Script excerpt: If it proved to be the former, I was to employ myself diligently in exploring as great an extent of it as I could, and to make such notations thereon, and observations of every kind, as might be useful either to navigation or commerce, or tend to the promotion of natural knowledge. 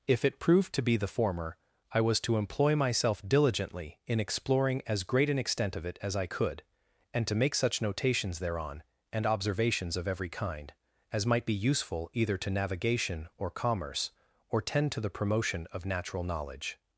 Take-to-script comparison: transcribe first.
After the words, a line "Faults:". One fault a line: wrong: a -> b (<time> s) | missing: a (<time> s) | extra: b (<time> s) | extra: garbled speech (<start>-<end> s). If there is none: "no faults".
If it proved to be the former, I was to employ myself diligently in exploring as great an extent of it as I could, and to make such notations thereon, and observations of every kind, as might be useful either to navigation or commerce, or tend to the promotion of natural knowledge.
Faults:
no faults